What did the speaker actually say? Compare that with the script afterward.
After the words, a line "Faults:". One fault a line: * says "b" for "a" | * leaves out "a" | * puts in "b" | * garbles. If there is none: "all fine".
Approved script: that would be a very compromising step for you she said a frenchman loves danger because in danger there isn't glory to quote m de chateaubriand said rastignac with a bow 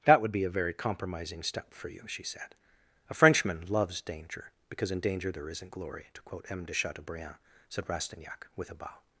that would be a very compromising step for you she said a frenchman loves danger because in danger there isn't glory to quote m de chateaubriand said rastignac with a bow
Faults:
all fine